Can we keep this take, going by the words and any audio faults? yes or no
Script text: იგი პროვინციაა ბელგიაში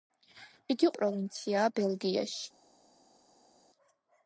yes